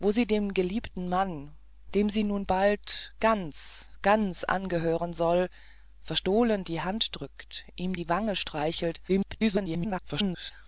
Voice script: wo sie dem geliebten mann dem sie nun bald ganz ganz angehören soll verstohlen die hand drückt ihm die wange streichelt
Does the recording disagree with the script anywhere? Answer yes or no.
yes